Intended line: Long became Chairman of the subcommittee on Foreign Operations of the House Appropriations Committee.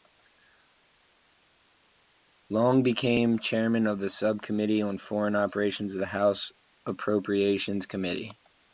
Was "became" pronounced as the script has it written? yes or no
yes